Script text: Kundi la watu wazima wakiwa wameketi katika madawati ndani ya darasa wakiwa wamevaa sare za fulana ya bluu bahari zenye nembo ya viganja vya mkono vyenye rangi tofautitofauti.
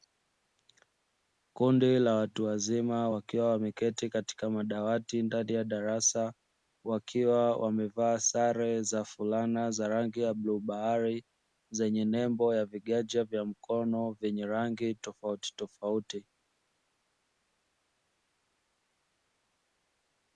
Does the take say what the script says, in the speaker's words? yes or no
no